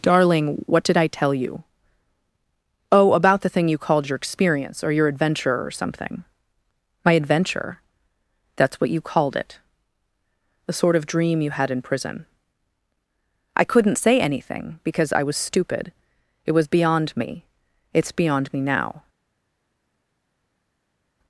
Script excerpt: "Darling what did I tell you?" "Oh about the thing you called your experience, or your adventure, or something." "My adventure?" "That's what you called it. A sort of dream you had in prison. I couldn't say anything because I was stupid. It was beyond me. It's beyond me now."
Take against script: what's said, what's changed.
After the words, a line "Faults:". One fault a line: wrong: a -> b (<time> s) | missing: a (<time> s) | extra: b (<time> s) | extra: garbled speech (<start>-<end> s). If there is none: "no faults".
"Darling what did I tell you?" "Oh about the thing you called your experience, or your adventure, or something." "My adventure?" "That's what you called it. The sort of dream you had in prison. I couldn't say anything because I was stupid. It was beyond me. It's beyond me now."
Faults:
wrong: A -> The (10.7 s)